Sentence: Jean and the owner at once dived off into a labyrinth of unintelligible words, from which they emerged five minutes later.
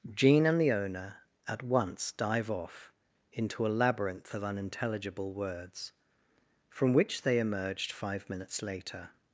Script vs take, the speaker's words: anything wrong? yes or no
yes